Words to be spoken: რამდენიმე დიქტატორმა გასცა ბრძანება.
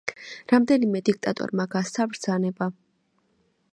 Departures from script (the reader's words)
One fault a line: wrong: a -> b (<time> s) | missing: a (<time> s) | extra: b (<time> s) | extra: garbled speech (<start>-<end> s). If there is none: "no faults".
no faults